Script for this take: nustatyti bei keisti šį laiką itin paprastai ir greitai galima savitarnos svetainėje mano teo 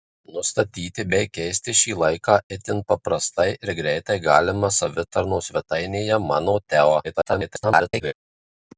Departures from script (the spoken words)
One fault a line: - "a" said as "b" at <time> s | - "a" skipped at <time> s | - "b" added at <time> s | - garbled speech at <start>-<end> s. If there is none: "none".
- garbled speech at 7.0-8.1 s